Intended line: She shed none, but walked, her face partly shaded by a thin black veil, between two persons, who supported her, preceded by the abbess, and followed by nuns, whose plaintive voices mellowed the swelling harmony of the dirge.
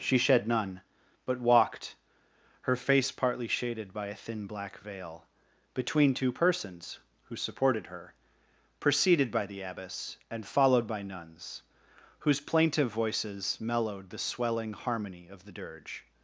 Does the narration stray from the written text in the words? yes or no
no